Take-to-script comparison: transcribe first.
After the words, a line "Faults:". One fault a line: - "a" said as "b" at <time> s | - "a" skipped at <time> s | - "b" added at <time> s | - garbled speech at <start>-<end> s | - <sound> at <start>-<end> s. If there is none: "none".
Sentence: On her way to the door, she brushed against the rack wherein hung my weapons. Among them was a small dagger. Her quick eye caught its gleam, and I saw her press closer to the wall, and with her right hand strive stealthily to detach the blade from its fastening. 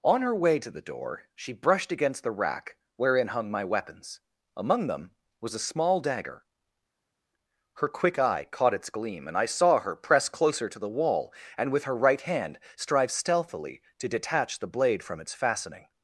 On her way to the door, she brushed against the rack wherein hung my weapons. Among them was a small dagger. Her quick eye caught its gleam, and I saw her press closer to the wall, and with her right hand strive stealthily to detach the blade from its fastening.
Faults:
none